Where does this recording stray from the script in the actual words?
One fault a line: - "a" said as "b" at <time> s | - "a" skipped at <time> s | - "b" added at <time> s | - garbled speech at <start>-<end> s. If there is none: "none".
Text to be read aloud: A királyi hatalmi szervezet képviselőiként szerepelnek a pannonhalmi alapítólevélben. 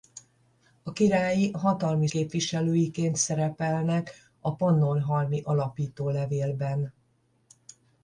- "szervezet" skipped at 2.1 s